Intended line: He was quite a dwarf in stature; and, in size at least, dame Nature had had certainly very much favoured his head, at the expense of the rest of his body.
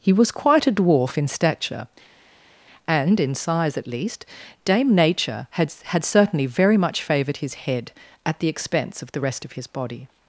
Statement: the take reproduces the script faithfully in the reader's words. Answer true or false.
true